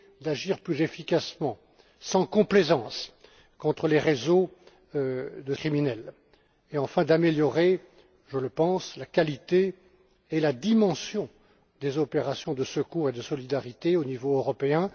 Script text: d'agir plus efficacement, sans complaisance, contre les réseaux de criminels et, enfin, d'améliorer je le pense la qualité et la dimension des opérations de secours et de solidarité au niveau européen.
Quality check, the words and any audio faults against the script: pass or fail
pass